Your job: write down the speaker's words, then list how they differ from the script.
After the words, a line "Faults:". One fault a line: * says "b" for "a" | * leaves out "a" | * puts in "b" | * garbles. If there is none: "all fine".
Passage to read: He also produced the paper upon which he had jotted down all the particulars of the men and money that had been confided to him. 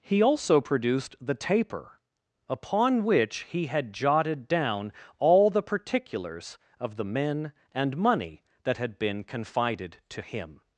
He also produced the taper upon which he had jotted down all the particulars of the men and money that had been confided to him.
Faults:
* says "taper" for "paper"